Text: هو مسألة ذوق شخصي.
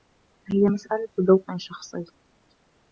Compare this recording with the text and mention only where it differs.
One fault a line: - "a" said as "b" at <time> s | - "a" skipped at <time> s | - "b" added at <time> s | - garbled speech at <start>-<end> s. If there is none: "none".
- "هو" said as "هي" at 0.5 s